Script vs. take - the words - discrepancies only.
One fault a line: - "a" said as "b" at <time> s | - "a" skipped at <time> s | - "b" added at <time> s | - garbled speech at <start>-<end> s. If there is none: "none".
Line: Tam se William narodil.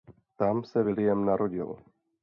none